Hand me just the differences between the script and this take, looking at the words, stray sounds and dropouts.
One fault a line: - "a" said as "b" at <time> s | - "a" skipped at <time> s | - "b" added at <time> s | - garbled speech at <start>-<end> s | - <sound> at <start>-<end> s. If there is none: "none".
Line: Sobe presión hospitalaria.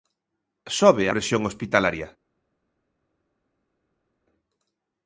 none